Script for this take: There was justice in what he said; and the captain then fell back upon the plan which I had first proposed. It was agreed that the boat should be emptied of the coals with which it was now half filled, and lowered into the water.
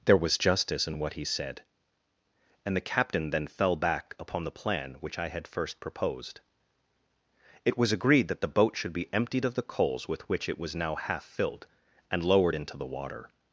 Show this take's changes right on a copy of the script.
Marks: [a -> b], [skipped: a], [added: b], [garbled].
There was justice in what he said; and the captain then fell back upon the plan which I had first proposed. It was agreed that the boat should be emptied of the coals with which it was now half filled, and lowered into the water.